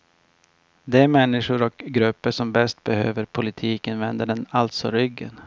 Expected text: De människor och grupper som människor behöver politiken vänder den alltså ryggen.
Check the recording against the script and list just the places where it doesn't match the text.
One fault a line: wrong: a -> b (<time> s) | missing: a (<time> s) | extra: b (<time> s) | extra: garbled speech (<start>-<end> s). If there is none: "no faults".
wrong: människor -> bäst (2.5 s)